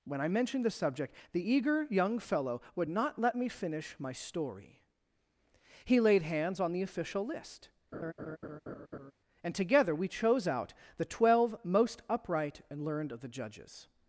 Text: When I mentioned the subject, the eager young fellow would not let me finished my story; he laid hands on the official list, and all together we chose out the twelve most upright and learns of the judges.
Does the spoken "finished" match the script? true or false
false